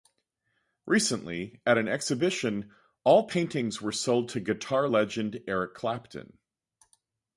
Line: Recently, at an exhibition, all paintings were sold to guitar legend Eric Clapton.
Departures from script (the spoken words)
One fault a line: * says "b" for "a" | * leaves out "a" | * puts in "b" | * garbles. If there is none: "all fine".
all fine